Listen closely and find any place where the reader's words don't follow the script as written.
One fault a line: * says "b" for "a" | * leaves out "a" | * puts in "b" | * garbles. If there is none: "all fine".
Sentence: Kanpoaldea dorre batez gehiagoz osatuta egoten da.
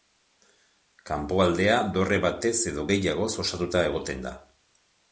* puts in "edo"